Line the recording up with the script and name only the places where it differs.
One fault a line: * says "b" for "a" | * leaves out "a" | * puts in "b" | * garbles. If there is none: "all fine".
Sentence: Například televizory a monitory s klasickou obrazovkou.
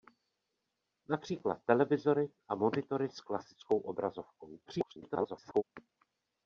* garbles